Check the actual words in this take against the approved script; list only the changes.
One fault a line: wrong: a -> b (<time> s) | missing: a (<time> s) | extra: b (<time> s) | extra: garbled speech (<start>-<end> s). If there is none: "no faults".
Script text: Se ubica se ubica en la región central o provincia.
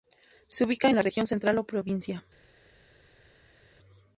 missing: se ubica (0.9 s)